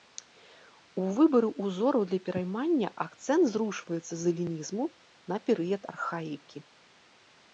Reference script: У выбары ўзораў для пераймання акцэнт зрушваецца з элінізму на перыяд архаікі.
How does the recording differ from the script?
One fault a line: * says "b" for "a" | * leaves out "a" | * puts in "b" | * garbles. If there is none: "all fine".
all fine